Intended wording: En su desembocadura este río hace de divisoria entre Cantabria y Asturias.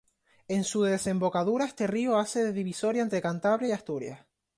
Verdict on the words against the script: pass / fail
pass